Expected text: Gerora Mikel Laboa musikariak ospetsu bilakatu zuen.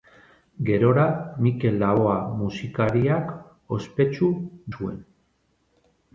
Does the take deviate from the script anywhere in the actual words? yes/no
yes